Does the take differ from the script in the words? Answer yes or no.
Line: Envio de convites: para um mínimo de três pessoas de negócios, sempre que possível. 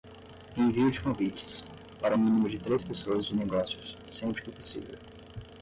no